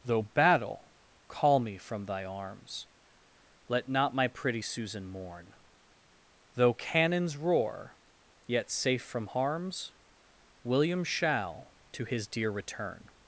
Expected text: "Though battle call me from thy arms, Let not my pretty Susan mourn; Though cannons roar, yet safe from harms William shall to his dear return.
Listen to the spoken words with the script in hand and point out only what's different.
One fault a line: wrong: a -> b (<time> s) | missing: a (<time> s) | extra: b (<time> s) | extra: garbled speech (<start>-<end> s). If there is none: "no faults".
no faults